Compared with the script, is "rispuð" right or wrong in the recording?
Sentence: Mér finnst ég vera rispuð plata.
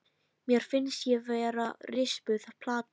right